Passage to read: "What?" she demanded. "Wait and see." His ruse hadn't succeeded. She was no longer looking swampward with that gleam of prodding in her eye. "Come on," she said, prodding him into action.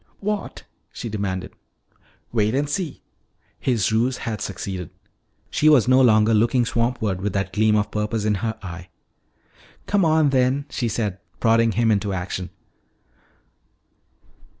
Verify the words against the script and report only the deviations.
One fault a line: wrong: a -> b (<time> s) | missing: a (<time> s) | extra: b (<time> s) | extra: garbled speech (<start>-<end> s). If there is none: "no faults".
wrong: hadn't -> had (4.2 s)
wrong: prodding -> purpose (7.9 s)
extra: then (10.3 s)